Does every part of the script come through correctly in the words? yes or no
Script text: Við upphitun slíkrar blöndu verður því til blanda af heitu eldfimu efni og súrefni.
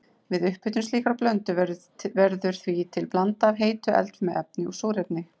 yes